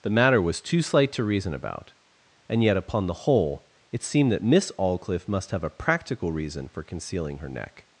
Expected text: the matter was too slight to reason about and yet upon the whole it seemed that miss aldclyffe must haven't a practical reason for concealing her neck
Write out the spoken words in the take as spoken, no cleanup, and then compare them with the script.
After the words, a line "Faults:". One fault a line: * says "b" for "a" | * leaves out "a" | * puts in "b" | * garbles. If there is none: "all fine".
the matter was too slight to reason about and yet upon the whole it seemed that miss aldclyffe must have a practical reason for concealing her neck
Faults:
* says "have" for "haven't"